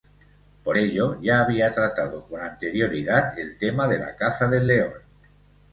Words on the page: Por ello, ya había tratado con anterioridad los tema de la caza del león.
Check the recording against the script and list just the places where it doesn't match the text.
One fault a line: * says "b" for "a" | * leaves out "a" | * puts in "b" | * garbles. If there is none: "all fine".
* says "el" for "los"